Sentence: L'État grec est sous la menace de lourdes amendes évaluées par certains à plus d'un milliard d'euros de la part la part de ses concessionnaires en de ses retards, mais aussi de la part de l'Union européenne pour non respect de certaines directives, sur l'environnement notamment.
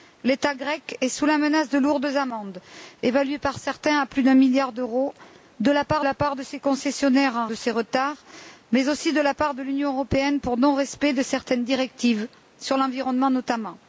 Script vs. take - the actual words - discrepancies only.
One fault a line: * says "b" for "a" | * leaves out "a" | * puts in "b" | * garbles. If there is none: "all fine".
all fine